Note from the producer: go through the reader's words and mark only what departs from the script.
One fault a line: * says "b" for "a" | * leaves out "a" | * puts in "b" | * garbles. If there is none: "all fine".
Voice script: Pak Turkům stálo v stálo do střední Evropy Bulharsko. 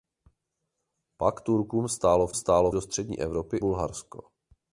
all fine